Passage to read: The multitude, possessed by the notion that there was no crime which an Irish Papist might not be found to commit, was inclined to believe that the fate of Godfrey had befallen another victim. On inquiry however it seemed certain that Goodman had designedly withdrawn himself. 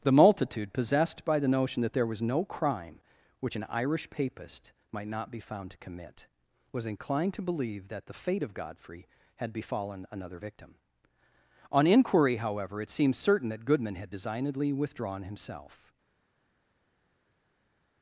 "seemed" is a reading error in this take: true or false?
true